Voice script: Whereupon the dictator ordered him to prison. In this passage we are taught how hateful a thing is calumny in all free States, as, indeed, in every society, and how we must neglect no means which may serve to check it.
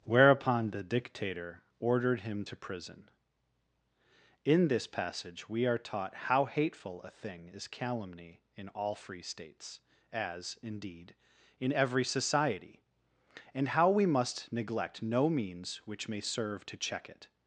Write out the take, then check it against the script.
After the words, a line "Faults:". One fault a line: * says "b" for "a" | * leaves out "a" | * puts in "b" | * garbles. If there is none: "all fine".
Whereupon the dictator ordered him to prison. In this passage we are taught how hateful a thing is calumny in all free States, as, indeed, in every society, and how we must neglect no means which may serve to check it.
Faults:
all fine